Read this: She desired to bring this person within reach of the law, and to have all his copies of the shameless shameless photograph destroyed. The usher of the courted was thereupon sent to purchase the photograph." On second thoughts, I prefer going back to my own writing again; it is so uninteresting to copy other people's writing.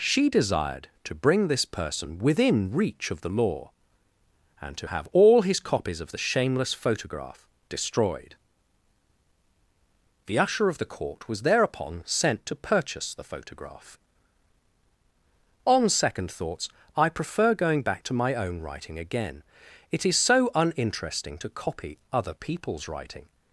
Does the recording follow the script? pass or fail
fail